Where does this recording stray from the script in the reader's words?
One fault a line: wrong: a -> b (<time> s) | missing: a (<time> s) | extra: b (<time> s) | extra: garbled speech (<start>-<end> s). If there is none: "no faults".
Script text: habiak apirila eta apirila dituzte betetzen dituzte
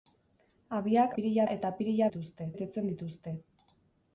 no faults